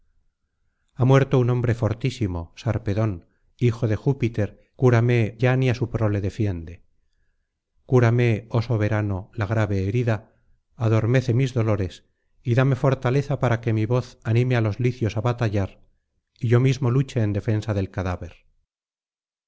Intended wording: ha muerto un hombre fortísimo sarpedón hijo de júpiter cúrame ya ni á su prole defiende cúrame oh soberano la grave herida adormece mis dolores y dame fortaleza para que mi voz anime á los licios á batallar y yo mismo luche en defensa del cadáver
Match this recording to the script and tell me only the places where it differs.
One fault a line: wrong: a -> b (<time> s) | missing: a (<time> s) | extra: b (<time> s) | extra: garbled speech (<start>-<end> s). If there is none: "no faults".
no faults